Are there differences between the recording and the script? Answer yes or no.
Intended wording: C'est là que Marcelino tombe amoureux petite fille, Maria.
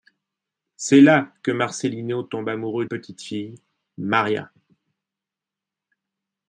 no